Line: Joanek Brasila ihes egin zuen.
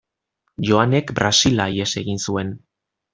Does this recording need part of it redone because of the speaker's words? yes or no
no